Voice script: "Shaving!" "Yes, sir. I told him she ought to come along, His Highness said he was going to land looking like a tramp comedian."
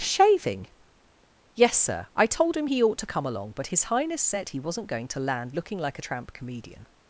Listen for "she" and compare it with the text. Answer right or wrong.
wrong